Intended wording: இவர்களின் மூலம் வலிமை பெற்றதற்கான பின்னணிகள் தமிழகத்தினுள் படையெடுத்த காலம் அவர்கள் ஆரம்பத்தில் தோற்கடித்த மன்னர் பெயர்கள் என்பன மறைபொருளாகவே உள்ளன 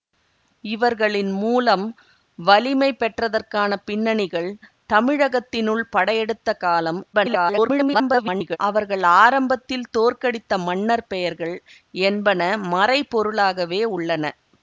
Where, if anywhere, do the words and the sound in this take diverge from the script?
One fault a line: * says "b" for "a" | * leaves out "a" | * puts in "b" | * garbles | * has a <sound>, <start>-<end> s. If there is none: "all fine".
* garbles